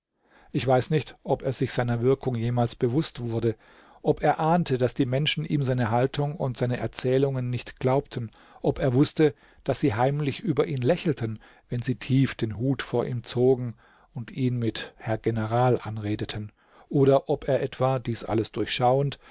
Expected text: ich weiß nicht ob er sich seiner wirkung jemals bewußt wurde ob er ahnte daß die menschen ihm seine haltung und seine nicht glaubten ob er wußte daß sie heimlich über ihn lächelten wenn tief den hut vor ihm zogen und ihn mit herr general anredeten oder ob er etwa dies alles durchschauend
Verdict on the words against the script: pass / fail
fail